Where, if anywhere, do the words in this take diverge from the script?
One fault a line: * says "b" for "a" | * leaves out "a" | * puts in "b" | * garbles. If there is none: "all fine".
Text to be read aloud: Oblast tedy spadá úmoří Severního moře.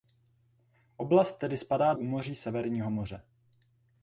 all fine